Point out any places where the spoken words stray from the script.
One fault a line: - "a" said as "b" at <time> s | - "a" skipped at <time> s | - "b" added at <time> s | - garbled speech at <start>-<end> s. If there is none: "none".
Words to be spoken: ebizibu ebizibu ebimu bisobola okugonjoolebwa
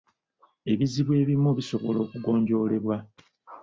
- "ebizibu" skipped at 1.1 s